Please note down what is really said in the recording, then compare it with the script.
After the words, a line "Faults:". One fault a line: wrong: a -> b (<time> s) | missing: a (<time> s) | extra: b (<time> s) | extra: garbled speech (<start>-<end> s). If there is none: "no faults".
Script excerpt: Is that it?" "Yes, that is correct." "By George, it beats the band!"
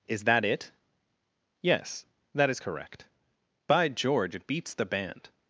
Is that it?" "Yes, that is correct." "By George, it beats the band!"
Faults:
no faults